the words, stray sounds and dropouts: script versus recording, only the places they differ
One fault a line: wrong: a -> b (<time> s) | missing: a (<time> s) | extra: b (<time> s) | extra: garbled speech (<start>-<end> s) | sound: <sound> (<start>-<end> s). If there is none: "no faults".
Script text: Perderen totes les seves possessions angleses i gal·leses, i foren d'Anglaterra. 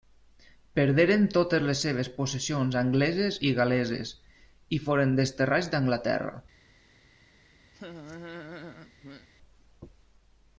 extra: desterrats (5.2 s)
sound: laugh (7.7-9.3 s)